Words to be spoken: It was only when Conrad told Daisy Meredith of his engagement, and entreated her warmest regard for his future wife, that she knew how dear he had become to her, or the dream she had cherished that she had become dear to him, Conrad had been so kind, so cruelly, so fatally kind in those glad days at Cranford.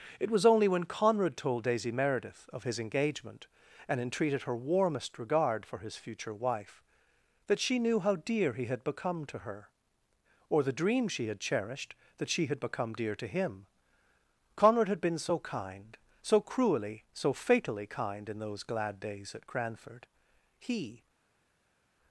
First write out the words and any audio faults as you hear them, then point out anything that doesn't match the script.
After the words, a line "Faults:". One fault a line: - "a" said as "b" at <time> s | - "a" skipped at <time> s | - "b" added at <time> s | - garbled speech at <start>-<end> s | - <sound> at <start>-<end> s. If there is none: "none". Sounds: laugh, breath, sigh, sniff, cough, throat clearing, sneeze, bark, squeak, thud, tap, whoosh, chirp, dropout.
It was only when Conrad told Daisy Meredith of his engagement, and entreated her warmest regard for his future wife, that she knew how dear he had become to her, or the dream she had cherished that she had become dear to him, Conrad had been so kind, so cruelly, so fatally kind in those glad days at Cranford. He
Faults:
- "He" added at 20.6 s